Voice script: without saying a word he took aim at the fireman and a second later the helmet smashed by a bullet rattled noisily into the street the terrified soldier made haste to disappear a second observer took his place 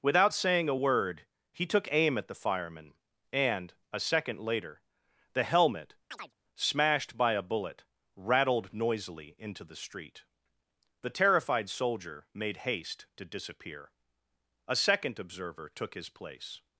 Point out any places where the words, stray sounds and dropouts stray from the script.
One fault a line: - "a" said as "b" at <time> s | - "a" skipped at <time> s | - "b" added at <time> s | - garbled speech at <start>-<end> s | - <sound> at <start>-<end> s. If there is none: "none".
- chirp at 6.1-6.3 s